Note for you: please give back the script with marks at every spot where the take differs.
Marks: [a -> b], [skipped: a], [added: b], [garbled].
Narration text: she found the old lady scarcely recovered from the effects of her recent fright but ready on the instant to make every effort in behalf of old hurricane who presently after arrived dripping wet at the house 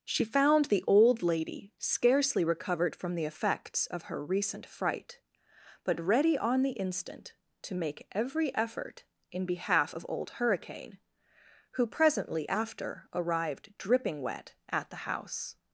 she found the old lady scarcely recovered from the effects of her recent fright but ready on the instant to make every effort in behalf of old hurricane who presently after arrived dripping wet at the house